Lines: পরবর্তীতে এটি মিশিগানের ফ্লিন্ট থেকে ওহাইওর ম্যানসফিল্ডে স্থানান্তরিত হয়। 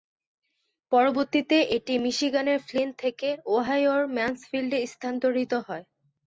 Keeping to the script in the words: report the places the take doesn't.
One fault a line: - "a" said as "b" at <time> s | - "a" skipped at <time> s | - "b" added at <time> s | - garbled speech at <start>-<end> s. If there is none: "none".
none